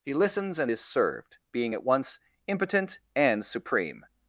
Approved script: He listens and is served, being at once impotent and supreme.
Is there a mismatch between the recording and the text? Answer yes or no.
no